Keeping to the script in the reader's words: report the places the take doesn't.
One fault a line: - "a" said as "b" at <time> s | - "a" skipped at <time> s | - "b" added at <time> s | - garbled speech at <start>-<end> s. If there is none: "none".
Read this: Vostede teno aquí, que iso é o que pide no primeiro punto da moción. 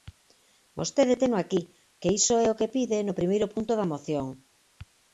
none